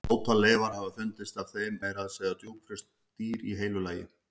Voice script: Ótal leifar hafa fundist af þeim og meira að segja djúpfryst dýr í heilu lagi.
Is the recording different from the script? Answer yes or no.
yes